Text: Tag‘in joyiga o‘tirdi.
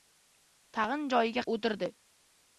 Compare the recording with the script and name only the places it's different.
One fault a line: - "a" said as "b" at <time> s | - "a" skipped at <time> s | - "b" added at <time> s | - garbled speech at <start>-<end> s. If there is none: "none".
none